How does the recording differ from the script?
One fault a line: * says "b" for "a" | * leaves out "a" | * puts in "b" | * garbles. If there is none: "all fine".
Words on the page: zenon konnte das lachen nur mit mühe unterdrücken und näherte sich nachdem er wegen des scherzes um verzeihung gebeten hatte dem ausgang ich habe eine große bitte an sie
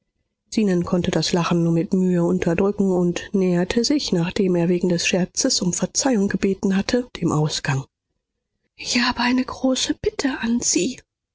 all fine